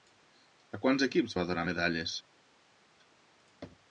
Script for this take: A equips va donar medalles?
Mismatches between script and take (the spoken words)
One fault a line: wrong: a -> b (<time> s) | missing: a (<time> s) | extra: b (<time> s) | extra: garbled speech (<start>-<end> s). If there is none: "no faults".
extra: quants (0.8 s)